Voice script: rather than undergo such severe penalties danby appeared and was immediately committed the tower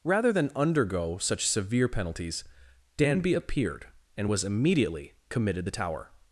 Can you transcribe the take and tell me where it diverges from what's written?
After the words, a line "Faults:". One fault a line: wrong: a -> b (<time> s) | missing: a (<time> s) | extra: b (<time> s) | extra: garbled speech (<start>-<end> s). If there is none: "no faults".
rather than undergo such severe penalties danby appeared and was immediately committed the tower
Faults:
no faults